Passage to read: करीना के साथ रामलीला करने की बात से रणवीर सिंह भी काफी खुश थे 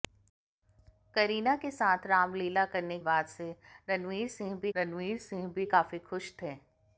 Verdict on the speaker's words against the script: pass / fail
fail